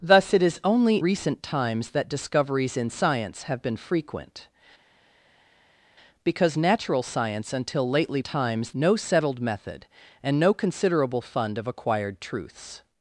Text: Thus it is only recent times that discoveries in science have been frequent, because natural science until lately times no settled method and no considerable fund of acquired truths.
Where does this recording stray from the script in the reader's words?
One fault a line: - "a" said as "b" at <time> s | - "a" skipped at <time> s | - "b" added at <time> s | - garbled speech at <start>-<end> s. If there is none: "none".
none